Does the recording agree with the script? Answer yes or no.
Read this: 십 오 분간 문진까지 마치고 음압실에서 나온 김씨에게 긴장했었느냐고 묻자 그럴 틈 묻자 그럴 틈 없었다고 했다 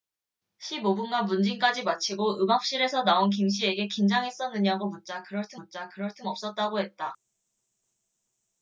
yes